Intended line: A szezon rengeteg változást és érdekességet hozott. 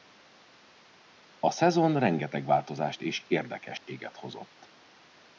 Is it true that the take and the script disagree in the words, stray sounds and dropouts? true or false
true